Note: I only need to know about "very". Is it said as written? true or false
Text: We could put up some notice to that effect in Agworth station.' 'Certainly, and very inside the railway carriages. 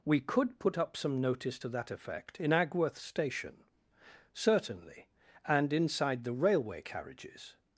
false